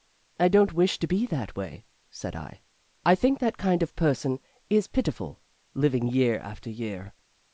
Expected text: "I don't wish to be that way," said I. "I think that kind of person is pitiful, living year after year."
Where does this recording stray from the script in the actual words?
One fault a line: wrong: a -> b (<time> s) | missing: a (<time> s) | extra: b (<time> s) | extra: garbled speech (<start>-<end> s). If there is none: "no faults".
no faults